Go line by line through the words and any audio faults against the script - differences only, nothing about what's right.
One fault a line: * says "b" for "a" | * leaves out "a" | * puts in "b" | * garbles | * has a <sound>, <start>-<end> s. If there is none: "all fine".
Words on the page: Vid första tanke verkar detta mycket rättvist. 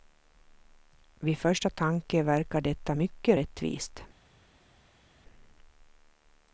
all fine